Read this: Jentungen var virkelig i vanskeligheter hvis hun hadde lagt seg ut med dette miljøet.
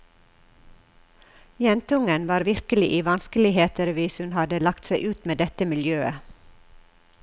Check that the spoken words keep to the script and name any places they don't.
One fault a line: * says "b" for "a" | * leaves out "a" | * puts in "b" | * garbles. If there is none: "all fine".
all fine